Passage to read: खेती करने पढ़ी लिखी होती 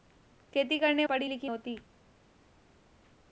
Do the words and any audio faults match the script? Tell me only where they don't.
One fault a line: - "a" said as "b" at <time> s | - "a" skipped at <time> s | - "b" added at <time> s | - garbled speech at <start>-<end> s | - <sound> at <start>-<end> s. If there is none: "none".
none